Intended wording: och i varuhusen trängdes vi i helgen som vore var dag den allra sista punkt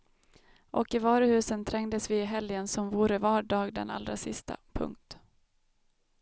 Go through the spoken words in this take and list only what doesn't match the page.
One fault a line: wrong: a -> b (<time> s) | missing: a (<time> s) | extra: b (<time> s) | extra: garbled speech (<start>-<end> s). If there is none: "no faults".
no faults